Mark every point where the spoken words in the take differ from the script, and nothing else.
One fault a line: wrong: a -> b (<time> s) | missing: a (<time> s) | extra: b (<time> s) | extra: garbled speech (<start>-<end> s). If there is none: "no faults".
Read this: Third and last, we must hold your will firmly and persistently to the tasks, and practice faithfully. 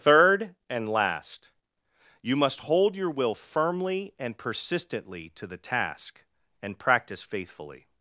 wrong: we -> you (2.2 s)
wrong: tasks -> task (5.6 s)